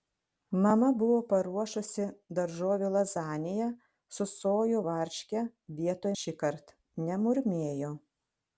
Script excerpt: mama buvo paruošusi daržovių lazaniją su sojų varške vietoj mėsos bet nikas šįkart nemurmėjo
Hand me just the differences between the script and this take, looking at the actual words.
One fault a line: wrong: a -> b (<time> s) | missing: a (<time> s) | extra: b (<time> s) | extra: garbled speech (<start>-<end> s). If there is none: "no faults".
missing: mėsos bet nikas (6.1 s)